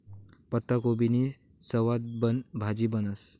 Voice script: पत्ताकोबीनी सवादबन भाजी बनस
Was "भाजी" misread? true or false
false